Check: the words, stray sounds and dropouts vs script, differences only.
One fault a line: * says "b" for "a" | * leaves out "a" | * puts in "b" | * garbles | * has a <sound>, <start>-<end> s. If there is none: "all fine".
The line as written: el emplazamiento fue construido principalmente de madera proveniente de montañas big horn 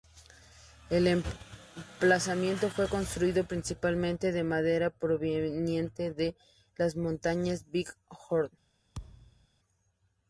* puts in "las"
* has a thud, 8.9-9.5 s